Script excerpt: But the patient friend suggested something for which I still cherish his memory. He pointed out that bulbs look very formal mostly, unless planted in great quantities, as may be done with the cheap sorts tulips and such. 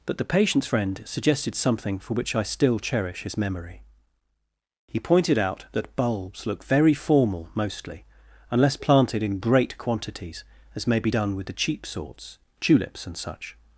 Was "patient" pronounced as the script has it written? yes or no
no